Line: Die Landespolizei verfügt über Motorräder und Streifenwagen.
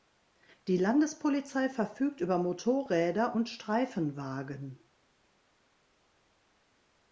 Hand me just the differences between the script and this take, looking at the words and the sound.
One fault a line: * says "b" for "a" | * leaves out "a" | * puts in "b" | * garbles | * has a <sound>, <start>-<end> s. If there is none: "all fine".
all fine